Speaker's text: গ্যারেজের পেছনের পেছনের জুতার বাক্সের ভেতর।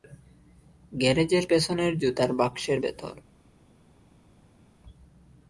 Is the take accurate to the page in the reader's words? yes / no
no